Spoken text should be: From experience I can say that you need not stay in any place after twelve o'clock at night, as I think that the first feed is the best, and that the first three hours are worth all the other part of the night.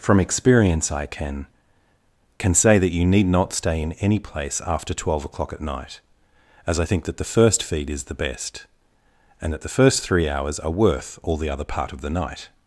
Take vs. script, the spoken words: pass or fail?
fail